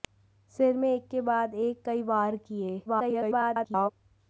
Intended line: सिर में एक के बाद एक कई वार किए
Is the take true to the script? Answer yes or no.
no